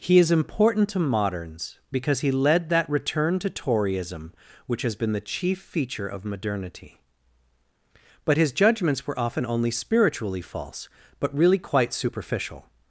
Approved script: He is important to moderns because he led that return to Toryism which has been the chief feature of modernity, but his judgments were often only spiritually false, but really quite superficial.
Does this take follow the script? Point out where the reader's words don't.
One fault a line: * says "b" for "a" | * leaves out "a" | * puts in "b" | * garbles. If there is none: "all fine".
all fine